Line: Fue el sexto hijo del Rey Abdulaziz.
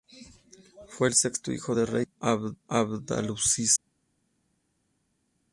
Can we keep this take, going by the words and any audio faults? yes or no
yes